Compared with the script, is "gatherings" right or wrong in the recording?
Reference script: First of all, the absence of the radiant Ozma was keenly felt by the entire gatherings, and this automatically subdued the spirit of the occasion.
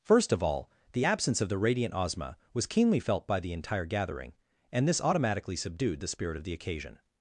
wrong